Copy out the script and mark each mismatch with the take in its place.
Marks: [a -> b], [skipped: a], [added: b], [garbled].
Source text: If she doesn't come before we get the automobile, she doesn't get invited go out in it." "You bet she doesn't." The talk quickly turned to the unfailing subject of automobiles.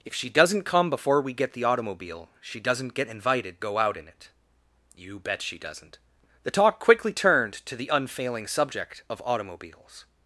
If she doesn't come before we get the automobile, she doesn't get invited go out in it." "You bet she doesn't." The talk quickly turned to the unfailing subject of automobiles.